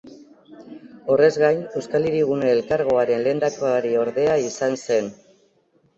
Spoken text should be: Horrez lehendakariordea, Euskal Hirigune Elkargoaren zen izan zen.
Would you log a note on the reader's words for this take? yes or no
yes